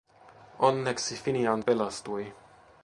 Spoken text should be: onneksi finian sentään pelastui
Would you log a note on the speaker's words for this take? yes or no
yes